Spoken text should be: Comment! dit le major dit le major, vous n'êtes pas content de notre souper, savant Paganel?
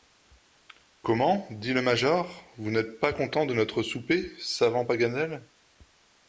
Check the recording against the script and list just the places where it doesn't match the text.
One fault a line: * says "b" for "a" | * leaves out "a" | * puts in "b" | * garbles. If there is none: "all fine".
* leaves out "dit le major"